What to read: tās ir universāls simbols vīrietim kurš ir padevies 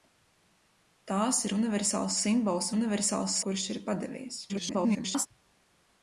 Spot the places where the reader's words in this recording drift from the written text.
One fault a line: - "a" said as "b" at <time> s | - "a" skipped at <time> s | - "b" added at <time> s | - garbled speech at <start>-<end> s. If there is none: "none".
- "vīrietim" said as "universāls" at 2.8 s
- garbled speech at 4.5-5.3 s